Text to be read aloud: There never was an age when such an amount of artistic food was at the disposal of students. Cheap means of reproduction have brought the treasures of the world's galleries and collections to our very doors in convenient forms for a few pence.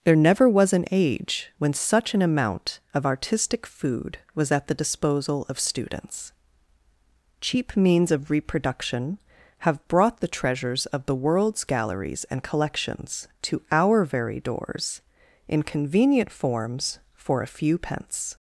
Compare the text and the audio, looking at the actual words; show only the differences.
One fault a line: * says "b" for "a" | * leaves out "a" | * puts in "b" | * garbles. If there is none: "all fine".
all fine